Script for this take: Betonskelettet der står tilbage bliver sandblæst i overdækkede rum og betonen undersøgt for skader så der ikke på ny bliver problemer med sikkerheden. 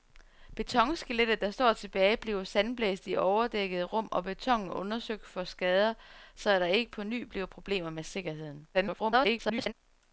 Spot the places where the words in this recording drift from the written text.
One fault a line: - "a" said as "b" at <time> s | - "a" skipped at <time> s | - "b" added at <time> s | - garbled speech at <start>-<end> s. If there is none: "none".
- garbled speech at 8.7-9.7 s